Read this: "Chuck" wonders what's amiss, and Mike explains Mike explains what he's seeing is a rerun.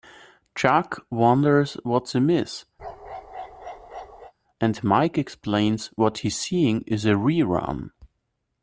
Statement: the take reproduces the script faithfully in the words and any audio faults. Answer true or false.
false